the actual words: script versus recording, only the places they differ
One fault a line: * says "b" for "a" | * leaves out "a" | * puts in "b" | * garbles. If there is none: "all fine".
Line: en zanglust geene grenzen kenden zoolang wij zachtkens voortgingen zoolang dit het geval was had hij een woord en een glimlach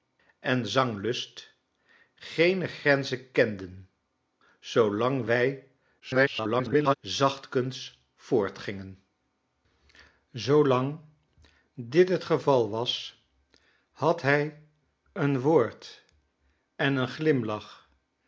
* garbles